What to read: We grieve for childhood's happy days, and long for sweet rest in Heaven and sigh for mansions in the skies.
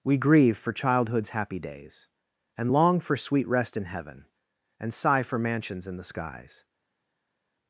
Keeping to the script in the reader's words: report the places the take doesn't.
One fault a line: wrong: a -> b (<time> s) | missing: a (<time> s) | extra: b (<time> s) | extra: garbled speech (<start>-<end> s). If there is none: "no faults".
no faults